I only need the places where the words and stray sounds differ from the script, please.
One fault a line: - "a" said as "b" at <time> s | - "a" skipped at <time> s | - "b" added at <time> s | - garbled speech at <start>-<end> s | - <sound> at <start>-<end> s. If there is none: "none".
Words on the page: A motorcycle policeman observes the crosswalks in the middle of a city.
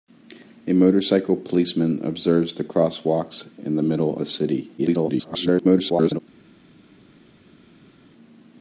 - "of" skipped at 4.2 s
- garbled speech at 4.8-6.2 s